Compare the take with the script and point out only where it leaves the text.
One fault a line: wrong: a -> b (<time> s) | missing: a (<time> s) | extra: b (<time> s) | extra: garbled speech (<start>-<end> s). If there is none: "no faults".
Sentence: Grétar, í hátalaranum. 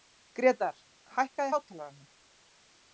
extra: hækkaðu (1.2 s)